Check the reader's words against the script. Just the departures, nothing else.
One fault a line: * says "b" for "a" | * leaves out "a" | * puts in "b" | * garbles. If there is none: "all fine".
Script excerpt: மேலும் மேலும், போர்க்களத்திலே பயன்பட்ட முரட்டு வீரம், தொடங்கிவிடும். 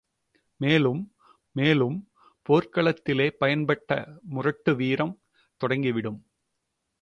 all fine